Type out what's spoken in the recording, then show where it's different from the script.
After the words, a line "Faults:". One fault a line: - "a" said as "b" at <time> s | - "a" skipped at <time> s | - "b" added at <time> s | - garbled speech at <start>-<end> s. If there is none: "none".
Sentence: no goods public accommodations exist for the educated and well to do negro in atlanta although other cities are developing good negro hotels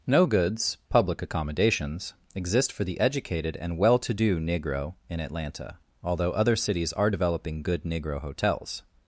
no goods public accommodations exist for the educated and well to do negro in atlanta although other cities are developing good negro hotels
Faults:
none